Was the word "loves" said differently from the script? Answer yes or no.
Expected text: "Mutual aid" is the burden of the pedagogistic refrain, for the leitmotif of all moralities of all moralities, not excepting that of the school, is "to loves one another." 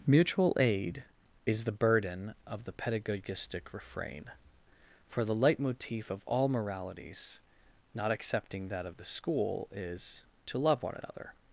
yes